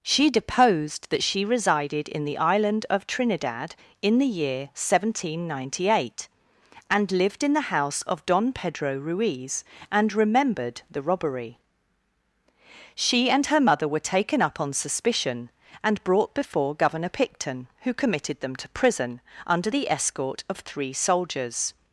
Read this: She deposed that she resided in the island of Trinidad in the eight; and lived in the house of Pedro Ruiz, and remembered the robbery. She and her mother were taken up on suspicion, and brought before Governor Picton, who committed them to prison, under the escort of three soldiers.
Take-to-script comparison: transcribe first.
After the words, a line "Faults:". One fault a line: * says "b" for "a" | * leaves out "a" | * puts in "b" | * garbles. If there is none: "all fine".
She deposed that she resided in the island of Trinidad in the year seventeen ninety eight; and lived in the house of Don Pedro Ruiz, and remembered the robbery. She and her mother were taken up on suspicion, and brought before Governor Picton, who committed them to prison, under the escort of three soldiers.
Faults:
* puts in "year seventeen ninety"
* puts in "Don"